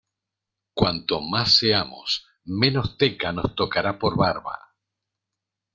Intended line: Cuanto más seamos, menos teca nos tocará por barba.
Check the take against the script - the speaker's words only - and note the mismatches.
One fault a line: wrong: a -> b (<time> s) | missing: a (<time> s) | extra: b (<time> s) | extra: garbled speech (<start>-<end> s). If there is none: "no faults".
no faults